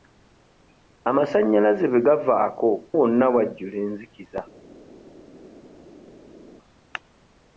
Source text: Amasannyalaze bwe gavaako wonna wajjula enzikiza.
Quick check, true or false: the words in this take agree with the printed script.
true